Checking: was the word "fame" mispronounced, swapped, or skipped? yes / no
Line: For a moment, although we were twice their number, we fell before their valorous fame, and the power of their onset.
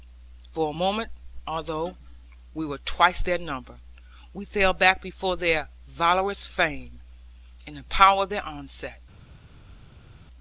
no